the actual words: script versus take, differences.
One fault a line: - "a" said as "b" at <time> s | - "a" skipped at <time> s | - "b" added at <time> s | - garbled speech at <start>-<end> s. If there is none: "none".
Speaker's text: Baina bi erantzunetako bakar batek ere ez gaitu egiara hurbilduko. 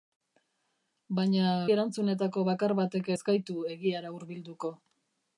- "bi" skipped at 1.5 s
- "ere" skipped at 3.1 s